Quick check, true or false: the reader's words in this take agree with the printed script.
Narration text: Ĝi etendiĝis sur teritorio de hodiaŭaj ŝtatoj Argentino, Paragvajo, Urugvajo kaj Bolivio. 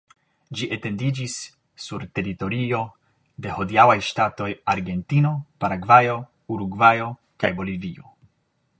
true